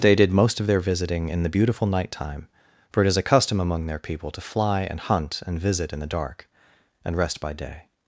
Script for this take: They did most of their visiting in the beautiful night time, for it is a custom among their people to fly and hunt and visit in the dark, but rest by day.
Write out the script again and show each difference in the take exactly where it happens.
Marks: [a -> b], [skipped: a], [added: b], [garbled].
They did most of their visiting in the beautiful night time, for it is a custom among their people to fly and hunt and visit in the dark, [but -> and] rest by day.